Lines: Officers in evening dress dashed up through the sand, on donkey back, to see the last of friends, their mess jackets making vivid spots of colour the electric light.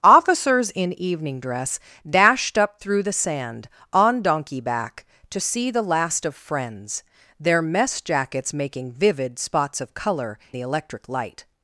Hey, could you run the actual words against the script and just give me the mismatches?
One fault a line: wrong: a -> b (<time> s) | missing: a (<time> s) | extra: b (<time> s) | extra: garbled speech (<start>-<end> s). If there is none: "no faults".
no faults